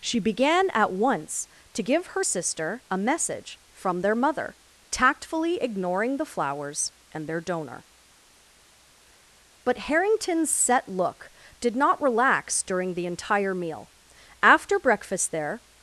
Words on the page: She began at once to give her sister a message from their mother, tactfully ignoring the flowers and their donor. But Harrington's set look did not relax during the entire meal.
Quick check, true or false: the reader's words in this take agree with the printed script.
false